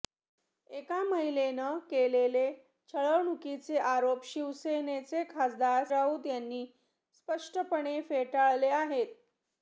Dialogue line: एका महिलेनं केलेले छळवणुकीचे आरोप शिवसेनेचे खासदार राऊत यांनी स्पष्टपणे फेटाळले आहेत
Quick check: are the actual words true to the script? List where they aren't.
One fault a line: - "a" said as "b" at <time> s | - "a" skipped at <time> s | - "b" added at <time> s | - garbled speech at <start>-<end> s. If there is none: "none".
none